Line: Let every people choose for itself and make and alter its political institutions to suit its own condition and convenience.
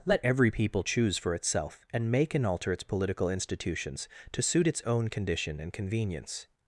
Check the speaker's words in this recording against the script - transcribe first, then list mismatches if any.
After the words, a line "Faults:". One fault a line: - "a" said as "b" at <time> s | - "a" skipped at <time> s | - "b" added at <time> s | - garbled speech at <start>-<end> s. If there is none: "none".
Let every people choose for itself and make and alter its political institutions to suit its own condition and convenience.
Faults:
none